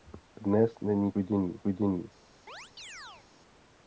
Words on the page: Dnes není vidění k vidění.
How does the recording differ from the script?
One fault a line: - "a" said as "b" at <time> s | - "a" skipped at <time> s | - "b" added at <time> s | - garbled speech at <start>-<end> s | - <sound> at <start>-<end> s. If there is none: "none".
- chirp at 2.5-3.3 s